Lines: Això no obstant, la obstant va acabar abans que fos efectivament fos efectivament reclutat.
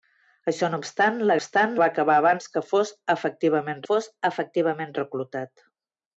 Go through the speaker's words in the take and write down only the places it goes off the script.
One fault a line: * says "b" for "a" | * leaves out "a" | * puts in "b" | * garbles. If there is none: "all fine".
all fine